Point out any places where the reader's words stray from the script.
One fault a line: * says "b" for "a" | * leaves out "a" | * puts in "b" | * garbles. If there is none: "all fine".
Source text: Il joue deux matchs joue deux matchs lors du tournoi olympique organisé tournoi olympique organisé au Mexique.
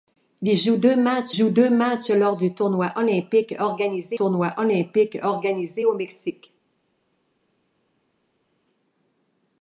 all fine